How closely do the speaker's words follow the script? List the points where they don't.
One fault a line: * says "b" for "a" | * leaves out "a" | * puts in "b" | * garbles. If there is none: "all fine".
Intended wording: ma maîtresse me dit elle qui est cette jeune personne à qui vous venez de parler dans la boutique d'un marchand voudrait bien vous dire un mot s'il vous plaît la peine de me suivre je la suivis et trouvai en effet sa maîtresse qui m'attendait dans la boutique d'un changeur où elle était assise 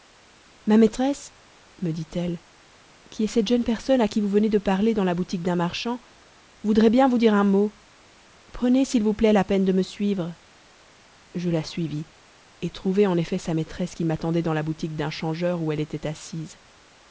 * puts in "prenez"